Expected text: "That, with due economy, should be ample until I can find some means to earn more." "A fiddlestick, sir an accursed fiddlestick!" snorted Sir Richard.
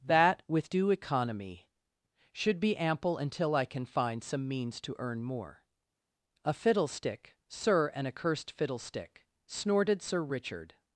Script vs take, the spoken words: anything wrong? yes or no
no